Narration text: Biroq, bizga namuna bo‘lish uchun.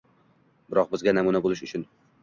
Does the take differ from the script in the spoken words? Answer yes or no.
no